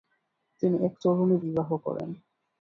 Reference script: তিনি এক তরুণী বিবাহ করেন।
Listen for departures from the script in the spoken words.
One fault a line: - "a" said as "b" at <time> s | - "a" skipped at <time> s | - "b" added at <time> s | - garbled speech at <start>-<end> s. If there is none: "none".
none